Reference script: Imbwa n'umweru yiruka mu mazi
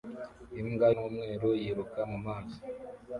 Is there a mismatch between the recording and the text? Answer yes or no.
no